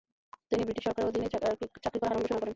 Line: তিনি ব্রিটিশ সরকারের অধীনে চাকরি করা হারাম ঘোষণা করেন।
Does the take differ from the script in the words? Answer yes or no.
no